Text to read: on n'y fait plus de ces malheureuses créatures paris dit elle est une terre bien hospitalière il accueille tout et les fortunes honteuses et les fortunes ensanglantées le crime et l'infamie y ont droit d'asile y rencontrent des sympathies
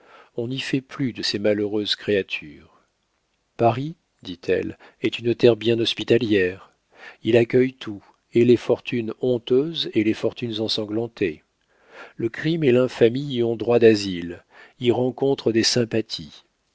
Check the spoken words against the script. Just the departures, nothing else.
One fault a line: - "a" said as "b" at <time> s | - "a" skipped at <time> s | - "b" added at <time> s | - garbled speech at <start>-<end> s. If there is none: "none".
none